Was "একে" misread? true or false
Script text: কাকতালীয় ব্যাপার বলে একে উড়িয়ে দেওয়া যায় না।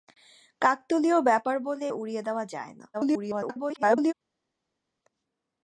true